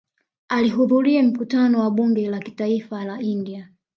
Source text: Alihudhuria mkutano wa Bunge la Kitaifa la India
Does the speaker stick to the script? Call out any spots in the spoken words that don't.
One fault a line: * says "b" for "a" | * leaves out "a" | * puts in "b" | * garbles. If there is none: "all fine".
all fine